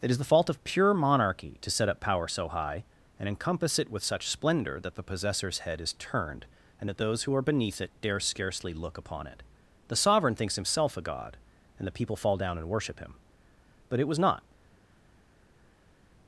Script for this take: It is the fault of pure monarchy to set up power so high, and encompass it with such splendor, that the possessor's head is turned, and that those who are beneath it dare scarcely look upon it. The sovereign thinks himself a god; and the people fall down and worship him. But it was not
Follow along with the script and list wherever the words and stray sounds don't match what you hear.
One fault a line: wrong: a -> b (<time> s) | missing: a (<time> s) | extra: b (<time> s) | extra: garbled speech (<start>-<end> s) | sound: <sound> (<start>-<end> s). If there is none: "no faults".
no faults